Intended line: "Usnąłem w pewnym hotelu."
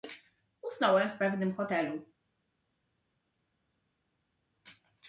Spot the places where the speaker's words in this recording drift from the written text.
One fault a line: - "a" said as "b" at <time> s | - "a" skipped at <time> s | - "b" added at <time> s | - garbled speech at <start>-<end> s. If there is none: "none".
none